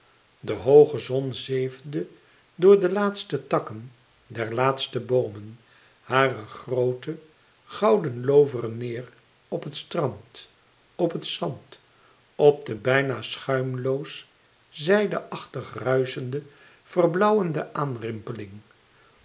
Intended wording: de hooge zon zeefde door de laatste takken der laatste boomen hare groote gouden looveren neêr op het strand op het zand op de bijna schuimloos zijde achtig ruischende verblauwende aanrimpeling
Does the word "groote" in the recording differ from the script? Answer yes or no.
no